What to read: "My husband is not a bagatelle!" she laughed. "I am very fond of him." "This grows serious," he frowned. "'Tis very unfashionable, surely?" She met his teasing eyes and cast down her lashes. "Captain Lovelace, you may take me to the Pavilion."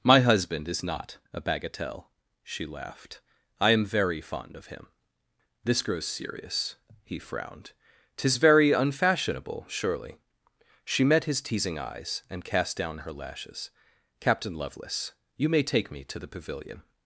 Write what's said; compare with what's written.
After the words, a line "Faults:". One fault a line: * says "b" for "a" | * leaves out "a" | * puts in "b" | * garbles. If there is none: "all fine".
"My husband is not a bagatelle!" she laughed. "I am very fond of him." "This grows serious," he frowned. "'Tis very unfashionable, surely?" She met his teasing eyes and cast down her lashes. "Captain Lovelace, you may take me to the Pavilion."
Faults:
all fine